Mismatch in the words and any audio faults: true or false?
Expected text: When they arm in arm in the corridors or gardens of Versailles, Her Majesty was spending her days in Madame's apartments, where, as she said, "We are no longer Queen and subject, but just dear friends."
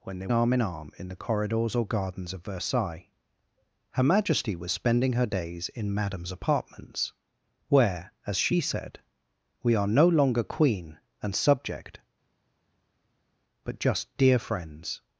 false